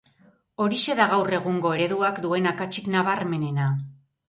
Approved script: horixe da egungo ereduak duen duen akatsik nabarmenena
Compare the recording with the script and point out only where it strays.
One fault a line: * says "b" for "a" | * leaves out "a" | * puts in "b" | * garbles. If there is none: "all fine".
* puts in "gaur"
* leaves out "duen"